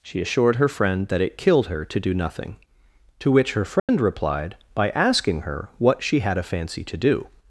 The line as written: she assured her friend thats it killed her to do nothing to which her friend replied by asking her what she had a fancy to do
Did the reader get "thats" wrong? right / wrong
wrong